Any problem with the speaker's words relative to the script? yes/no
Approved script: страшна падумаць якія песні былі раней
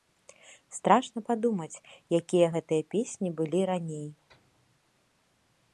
yes